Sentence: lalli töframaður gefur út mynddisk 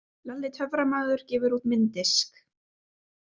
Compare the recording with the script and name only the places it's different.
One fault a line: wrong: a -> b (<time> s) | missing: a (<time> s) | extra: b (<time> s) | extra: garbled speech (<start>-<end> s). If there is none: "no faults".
no faults